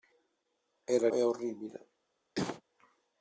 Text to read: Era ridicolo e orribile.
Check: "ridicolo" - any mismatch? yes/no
yes